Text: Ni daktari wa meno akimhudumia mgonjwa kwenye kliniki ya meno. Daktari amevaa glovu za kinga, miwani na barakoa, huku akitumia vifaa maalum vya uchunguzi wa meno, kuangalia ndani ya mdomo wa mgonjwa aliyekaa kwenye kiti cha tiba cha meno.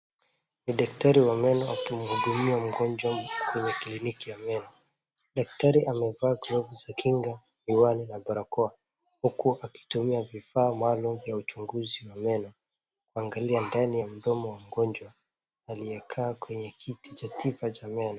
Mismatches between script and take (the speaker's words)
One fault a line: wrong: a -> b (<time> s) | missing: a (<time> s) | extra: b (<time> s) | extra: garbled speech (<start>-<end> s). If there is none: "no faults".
no faults